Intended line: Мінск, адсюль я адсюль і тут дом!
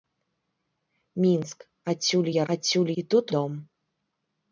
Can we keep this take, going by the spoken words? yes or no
yes